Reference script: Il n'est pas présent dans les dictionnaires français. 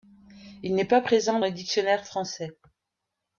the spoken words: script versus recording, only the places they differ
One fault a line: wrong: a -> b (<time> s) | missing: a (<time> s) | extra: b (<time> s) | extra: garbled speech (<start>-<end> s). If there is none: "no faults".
missing: dans (1.4 s)